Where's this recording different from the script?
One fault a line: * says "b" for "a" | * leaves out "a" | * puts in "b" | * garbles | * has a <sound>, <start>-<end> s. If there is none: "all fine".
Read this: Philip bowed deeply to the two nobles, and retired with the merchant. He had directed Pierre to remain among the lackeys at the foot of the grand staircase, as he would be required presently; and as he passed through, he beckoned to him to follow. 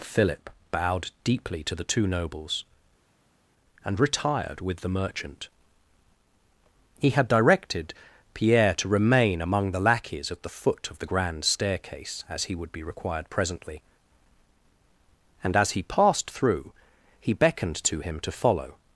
all fine